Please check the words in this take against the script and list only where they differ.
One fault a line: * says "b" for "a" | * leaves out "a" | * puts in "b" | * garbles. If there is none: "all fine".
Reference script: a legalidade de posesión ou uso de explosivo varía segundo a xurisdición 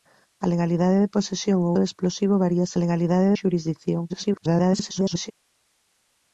* leaves out "uso"
* says "legalidade" for "segundo"
* garbles